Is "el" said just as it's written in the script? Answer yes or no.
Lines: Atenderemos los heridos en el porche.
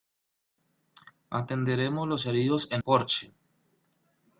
no